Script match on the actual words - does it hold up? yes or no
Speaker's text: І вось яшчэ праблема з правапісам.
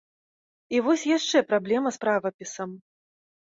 yes